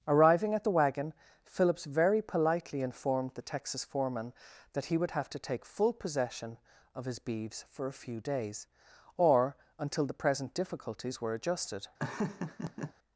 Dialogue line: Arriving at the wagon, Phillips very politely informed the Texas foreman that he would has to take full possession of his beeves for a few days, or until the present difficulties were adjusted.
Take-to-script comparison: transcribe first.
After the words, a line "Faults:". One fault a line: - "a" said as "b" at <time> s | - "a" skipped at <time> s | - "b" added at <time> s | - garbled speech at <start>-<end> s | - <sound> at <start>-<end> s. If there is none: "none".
Arriving at the wagon, Phillips very politely informed the Texas foreman that he would have to take full possession of his beeves for a few days, or until the present difficulties were adjusted.
Faults:
- "has" said as "have" at 5.1 s
- laugh at 12.0-12.9 s